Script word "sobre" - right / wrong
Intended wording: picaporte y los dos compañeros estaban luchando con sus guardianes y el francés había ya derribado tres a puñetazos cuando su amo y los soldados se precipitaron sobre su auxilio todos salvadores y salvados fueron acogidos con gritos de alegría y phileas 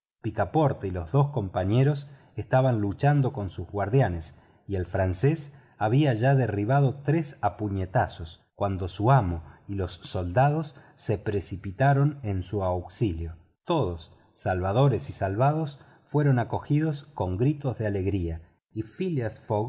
wrong